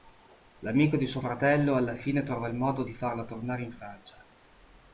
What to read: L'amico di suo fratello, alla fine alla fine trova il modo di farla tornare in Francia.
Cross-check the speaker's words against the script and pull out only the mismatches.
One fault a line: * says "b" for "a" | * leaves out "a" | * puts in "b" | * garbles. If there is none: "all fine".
* leaves out "alla fine"